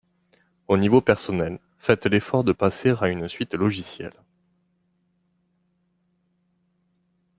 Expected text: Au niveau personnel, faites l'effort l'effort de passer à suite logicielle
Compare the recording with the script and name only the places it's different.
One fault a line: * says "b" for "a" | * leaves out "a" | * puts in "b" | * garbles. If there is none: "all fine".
* leaves out "l'effort"
* puts in "une"